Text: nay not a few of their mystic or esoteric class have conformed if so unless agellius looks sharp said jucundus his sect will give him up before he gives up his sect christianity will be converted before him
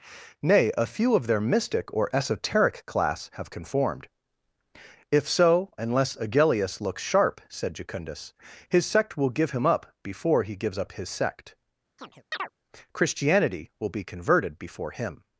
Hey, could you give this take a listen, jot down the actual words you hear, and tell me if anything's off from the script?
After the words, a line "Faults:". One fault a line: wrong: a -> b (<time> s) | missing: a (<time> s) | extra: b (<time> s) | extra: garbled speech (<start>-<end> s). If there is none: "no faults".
nay a few of their mystic or esoteric class have conformed if so unless agellius looks sharp said jucundus his sect will give him up before he gives up his sect christianity will be converted before him
Faults:
missing: not (0.7 s)